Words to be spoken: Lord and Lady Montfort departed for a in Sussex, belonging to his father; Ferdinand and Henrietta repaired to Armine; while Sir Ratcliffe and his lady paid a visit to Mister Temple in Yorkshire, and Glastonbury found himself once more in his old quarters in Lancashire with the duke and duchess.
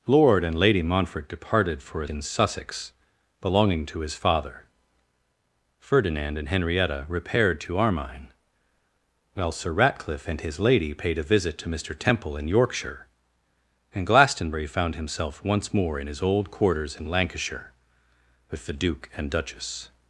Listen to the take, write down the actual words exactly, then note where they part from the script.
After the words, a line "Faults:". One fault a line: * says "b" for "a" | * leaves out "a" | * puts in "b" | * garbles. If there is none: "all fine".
Lord and Lady Montfort departed for a in Sussex, belonging to his father; Ferdinand and Henrietta repaired to Armine; while Sir Ratcliffe and his lady paid a visit to Mister Temple in Yorkshire, and Glastonbury found himself once more in his old quarters in Lancashire with the duke and duchess.
Faults:
all fine